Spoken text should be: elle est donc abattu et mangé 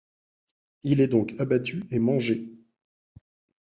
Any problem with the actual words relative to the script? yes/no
yes